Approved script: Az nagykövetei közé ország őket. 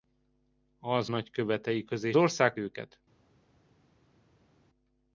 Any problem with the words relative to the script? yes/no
no